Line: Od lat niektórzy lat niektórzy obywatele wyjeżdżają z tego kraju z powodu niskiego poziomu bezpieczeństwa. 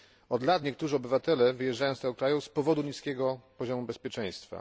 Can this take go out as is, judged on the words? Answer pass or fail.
fail